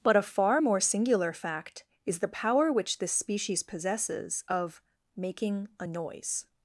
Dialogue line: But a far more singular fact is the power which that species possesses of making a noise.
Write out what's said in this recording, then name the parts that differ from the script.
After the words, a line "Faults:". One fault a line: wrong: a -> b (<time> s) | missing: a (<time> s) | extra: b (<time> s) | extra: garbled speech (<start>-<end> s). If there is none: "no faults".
But a far more singular fact is the power which this species possesses of making a noise.
Faults:
wrong: that -> this (3.0 s)